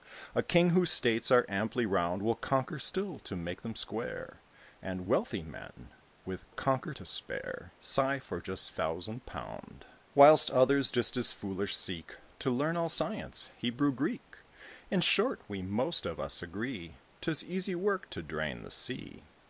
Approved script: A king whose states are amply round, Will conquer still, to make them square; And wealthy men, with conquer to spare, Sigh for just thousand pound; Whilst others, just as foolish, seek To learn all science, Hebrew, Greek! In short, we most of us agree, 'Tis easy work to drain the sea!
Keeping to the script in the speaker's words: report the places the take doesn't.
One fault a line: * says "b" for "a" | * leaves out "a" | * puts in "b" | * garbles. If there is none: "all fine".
all fine